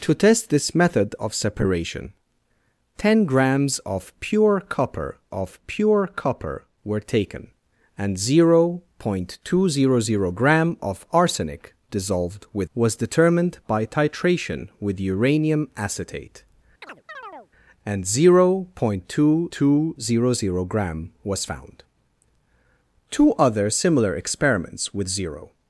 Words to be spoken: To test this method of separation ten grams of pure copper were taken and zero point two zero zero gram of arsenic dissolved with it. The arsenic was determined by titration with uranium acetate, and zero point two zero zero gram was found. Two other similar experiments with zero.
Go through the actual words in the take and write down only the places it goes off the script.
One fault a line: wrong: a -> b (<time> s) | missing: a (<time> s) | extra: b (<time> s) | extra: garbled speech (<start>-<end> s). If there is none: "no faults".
extra: of pure copper (5.3 s)
missing: it The arsenic (12.7 s)
extra: two (19.5 s)